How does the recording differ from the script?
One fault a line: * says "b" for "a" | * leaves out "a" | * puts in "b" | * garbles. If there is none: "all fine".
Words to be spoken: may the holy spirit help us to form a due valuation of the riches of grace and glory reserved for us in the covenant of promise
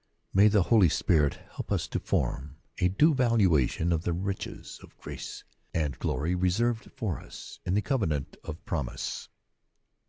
all fine